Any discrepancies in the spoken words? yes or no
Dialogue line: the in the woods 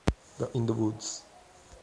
no